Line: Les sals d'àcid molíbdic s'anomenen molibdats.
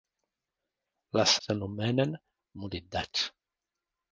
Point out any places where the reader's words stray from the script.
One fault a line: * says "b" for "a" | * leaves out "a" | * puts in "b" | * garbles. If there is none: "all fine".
* leaves out "sals d'àcid molíbdic"